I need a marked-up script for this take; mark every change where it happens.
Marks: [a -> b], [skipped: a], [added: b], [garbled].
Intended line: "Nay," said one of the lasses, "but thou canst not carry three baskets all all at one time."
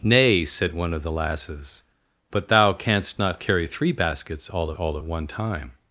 "Nay," said one of the lasses, "but thou canst not carry three baskets all all at one time."